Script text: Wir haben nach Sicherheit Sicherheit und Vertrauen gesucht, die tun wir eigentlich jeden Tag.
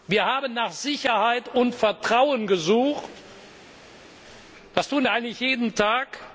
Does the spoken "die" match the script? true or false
false